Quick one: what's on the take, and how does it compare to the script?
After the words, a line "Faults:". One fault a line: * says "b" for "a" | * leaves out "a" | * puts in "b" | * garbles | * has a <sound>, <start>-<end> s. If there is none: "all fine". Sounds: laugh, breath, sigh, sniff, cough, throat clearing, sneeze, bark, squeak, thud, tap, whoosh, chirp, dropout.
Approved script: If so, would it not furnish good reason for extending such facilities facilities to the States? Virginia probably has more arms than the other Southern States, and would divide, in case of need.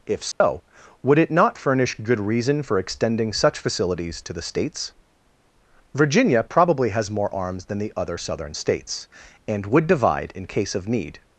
If so, would it not furnish good reason for extending such facilities to the States? Virginia probably has more arms than the other Southern States, and would divide, in case of need.
Faults:
* has a dropout, 0.3-0.4 s
* leaves out "facilities"